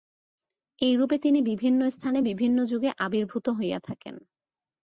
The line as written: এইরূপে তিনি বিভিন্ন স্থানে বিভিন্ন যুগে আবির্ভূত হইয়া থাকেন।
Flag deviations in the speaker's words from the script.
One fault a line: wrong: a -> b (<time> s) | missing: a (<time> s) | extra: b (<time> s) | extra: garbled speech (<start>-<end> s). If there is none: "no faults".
no faults